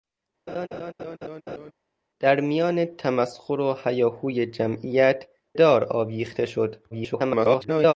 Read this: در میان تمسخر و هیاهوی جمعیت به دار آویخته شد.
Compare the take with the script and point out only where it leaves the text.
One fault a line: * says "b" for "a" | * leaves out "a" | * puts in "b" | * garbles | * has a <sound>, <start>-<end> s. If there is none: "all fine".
* has a laugh, 0.5-1.7 s
* leaves out "به"
* garbles